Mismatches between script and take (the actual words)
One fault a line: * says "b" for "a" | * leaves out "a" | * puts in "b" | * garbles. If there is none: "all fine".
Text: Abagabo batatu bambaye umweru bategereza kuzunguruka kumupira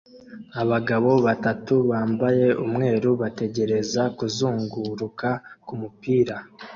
all fine